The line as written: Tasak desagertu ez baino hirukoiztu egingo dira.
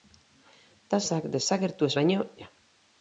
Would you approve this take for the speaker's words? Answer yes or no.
no